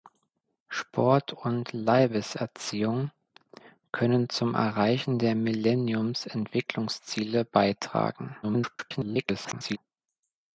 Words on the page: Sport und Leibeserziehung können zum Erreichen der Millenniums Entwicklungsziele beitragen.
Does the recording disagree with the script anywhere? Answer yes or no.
yes